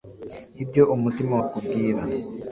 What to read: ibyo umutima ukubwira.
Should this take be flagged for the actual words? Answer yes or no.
no